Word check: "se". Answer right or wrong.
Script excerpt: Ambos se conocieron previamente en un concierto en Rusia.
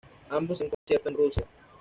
wrong